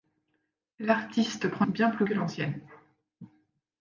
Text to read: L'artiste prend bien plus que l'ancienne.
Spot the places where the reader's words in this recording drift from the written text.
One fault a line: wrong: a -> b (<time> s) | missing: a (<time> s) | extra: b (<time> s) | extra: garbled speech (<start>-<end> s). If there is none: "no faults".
no faults